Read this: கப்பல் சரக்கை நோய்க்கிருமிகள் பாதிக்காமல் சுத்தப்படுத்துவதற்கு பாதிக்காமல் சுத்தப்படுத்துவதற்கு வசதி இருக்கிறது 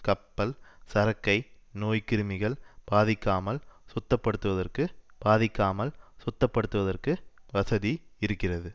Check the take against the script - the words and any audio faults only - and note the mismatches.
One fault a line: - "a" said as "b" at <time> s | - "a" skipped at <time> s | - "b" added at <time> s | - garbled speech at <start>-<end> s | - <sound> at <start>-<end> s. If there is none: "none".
none